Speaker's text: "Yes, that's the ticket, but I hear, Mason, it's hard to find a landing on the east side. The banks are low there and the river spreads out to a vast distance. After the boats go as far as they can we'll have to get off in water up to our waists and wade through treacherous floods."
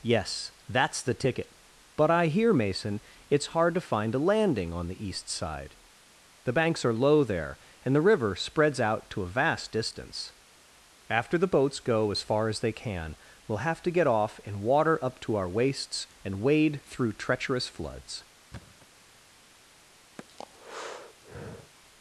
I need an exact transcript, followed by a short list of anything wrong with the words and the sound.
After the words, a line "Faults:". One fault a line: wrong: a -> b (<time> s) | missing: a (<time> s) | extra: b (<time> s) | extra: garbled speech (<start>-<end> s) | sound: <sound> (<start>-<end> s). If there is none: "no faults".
"Yes, that's the ticket, but I hear, Mason, it's hard to find a landing on the east side. The banks are low there and the river spreads out to a vast distance. After the boats go as far as they can we'll have to get off in water up to our waists and wade through treacherous floods."
Faults:
sound: thud (18.5-18.9 s)
sound: breath (20.2-21.7 s)